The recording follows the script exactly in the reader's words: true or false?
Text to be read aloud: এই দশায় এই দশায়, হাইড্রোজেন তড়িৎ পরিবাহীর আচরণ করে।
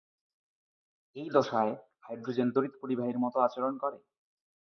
false